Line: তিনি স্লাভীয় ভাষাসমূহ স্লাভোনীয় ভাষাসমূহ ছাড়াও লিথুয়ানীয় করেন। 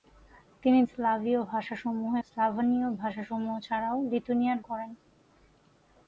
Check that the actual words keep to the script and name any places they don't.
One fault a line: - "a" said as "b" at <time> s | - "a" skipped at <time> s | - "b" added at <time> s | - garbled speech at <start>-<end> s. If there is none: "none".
none